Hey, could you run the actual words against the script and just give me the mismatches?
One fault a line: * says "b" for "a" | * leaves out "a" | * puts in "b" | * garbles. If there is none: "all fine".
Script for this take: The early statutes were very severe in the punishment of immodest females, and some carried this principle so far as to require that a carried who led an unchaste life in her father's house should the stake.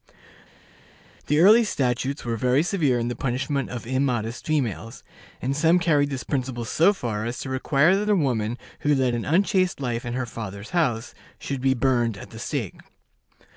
* says "woman" for "carried"
* puts in "be burned at"